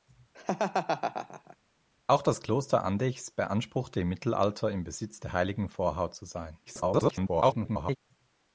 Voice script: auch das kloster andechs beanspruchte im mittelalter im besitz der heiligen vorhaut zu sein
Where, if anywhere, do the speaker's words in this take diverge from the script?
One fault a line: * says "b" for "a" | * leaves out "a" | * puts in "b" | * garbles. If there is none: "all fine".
* garbles